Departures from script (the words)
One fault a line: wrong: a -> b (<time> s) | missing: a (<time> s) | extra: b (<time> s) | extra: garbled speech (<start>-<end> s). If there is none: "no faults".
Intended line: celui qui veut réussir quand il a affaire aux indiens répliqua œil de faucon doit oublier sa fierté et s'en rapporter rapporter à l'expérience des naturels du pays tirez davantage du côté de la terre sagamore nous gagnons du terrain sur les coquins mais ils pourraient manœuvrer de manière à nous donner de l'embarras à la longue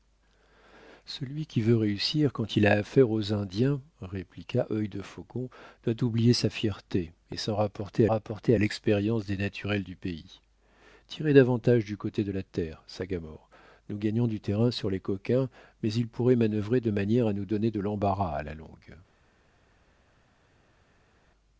no faults